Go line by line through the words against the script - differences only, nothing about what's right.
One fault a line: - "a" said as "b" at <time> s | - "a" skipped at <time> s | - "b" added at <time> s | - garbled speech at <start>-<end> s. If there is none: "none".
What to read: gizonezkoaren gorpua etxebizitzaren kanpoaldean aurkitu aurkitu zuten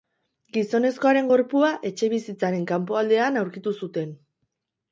- "aurkitu" skipped at 3.8 s